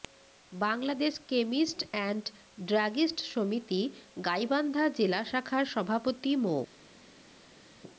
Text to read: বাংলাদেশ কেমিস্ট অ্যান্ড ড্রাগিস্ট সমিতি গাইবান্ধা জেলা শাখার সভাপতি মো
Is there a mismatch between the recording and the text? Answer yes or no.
no